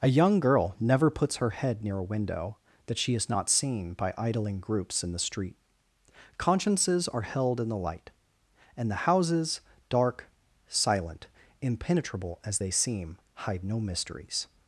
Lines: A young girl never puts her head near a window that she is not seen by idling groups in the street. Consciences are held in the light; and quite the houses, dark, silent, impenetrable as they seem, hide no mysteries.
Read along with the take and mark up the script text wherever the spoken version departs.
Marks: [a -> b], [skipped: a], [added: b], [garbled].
A young girl never puts her head near a window that she is not seen by idling groups in the street. Consciences are held in the light; and [skipped: quite] the houses, dark, silent, impenetrable as they seem, hide no mysteries.